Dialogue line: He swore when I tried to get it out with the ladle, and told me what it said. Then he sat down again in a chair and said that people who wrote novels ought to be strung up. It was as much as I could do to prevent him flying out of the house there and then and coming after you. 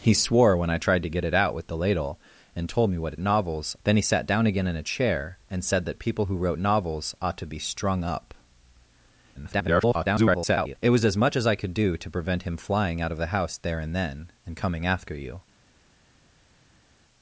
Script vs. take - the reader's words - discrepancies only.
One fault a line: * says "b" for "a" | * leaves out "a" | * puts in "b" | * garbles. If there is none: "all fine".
* says "novels" for "said"
* garbles